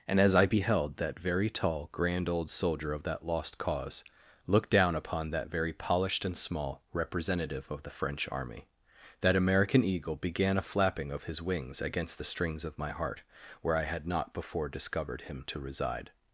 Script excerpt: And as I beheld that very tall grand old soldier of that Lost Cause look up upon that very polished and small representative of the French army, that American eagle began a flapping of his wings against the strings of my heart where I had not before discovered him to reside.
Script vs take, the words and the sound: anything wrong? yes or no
yes